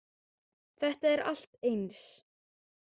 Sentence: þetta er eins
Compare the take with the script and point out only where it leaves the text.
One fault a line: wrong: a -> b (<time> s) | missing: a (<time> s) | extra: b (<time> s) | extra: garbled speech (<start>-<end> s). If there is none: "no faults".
extra: allt (1.3 s)